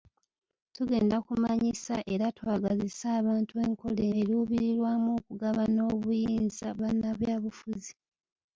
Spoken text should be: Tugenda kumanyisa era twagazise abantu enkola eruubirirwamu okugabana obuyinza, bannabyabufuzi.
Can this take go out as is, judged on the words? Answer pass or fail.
pass